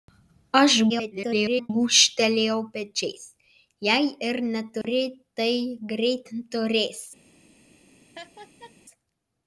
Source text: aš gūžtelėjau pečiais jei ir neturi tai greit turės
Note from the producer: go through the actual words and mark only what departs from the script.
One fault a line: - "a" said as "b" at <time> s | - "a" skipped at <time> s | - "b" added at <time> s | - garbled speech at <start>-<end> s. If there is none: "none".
- garbled speech at 0.9-1.7 s